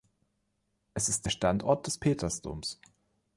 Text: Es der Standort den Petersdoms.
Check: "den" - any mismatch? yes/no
yes